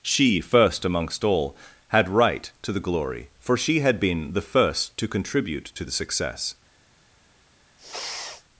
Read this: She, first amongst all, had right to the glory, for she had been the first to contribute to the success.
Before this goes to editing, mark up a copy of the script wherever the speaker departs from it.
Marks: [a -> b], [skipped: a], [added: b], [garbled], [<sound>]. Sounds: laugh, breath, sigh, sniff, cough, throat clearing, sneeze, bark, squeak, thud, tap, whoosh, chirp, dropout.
She, first amongst all, had right to the glory, for she had been the first to contribute to the success. [sniff]